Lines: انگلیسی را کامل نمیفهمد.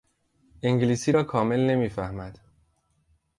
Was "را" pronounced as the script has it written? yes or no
yes